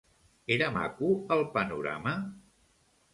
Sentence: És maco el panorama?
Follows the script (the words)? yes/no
no